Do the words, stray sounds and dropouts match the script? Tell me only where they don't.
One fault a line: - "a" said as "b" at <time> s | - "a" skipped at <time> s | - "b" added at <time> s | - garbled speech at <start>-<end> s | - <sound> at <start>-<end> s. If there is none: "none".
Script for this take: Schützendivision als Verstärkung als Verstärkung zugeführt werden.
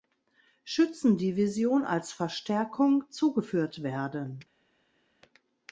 - "als Verstärkung" skipped at 3.0 s